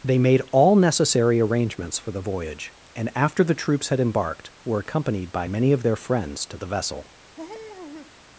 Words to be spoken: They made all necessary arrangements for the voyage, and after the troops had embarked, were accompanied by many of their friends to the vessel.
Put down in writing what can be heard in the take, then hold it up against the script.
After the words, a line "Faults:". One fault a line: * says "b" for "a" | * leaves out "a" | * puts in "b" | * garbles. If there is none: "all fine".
They made all necessary arrangements for the voyage, and after the troops had embarked, were accompanied by many of their friends to the vessel.
Faults:
all fine